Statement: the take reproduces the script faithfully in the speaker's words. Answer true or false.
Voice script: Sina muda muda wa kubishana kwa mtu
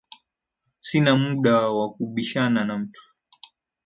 false